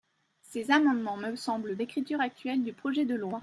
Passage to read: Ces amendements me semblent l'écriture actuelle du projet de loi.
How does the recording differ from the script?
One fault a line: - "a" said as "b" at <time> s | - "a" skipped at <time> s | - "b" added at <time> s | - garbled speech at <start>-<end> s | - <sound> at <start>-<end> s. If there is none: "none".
none